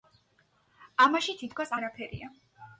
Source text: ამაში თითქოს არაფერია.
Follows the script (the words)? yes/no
yes